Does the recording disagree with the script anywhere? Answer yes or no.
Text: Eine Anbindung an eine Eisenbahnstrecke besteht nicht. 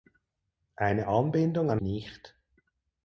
yes